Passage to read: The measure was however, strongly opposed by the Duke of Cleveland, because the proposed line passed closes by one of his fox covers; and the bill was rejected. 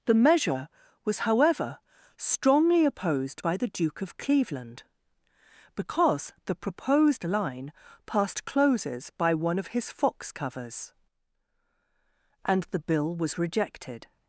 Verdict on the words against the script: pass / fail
pass